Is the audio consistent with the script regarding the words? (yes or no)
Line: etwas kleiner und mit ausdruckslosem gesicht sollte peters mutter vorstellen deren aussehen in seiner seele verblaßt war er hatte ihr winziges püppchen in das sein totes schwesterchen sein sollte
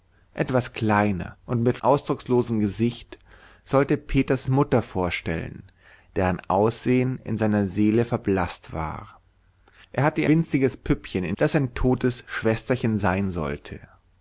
yes